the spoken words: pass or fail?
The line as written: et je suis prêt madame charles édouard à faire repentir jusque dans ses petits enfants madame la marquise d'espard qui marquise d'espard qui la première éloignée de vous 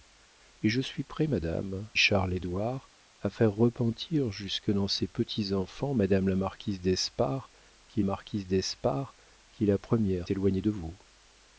pass